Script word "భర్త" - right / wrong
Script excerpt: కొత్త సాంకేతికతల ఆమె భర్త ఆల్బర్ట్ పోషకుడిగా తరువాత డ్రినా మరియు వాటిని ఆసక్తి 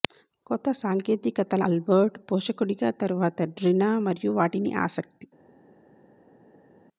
wrong